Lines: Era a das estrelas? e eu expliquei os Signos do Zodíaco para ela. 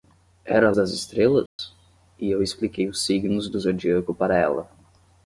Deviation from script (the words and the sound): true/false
true